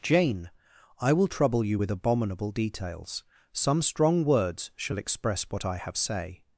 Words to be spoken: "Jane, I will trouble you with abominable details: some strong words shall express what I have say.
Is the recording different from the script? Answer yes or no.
no